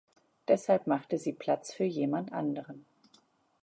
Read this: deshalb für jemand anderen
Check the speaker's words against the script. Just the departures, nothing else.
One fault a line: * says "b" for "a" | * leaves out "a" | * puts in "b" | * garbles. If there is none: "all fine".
* puts in "machte sie platz"